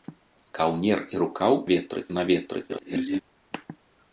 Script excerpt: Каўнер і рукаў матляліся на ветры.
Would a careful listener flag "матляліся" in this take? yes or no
yes